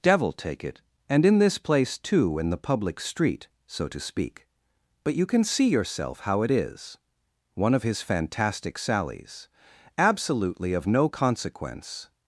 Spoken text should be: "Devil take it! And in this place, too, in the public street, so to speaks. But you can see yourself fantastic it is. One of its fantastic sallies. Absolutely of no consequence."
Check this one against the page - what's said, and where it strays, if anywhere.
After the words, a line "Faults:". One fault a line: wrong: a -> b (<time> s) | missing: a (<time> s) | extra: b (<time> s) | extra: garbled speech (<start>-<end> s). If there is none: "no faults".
"Devil take it! And in this place, too, in the public street, so to speak. But you can see yourself how it is. One of his fantastic sallies. Absolutely of no consequence."
Faults:
wrong: speaks -> speak (4.0 s)
wrong: fantastic -> how (6.2 s)
wrong: its -> his (7.8 s)